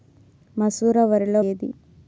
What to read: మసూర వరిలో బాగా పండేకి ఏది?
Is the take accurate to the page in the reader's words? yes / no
no